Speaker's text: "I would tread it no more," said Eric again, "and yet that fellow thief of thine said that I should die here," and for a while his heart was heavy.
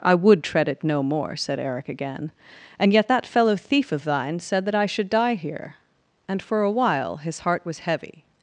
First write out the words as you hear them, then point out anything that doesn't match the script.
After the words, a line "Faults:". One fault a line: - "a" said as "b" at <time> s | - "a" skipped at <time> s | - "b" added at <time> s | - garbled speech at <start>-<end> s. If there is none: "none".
"I would tread it no more," said Eric again, "and yet that fellow thief of thine said that I should die here," and for a while his heart was heavy.
Faults:
none